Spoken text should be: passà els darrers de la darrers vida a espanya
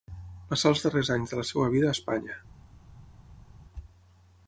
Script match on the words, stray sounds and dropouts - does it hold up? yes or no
no